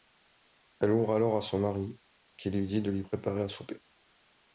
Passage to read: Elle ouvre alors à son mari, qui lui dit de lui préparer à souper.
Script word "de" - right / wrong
right